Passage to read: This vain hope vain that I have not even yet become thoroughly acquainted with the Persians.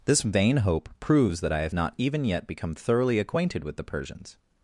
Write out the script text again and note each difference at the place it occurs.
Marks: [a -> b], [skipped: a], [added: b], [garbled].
This vain hope [vain -> proves] that I have not even yet become thoroughly acquainted with the Persians.